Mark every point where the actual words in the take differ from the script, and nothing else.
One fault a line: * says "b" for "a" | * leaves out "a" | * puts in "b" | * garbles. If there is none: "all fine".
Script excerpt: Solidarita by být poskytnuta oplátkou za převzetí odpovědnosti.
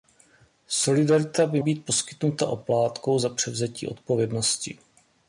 all fine